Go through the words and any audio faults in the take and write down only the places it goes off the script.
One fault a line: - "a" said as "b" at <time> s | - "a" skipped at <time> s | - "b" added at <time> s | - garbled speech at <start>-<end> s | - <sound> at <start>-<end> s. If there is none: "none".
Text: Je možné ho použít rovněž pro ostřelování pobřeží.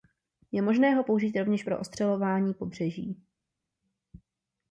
none